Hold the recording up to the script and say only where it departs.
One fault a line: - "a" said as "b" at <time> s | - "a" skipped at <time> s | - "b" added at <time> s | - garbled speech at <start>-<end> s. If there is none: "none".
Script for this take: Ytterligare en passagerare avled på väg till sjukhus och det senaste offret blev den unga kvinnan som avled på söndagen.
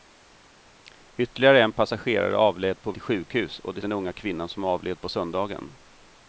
- "väg" skipped at 2.9 s
- "senaste offret blev" skipped at 3.8 s